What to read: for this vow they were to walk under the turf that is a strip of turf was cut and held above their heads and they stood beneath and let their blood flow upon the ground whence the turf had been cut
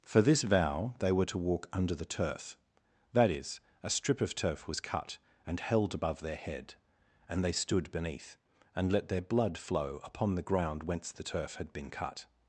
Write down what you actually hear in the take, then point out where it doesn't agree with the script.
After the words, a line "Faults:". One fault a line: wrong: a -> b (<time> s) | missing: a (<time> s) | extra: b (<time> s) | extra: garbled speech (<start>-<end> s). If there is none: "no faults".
for this vow they were to walk under the turf that is a strip of turf was cut and held above their head and they stood beneath and let their blood flow upon the ground whence the turf had been cut
Faults:
wrong: heads -> head (6.4 s)